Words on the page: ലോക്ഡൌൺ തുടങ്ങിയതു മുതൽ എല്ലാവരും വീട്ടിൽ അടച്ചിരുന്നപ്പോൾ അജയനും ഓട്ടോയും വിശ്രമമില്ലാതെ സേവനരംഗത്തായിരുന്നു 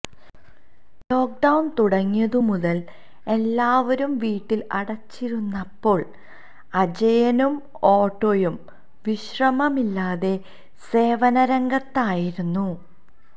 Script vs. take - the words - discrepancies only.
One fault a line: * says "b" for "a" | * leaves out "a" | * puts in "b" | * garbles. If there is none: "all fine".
all fine